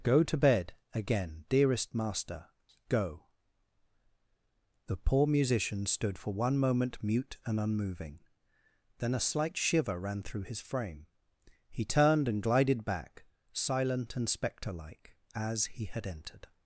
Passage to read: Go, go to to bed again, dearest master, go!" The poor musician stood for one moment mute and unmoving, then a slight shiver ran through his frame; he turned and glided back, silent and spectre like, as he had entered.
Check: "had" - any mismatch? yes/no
no